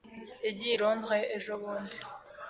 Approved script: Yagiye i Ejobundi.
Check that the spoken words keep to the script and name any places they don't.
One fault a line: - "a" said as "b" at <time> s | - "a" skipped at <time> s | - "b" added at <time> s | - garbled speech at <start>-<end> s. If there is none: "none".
- "Londres" added at 0.8 s